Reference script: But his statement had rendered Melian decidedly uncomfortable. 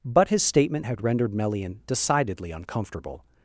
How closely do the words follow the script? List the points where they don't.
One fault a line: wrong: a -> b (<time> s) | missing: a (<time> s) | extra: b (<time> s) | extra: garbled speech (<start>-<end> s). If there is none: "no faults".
no faults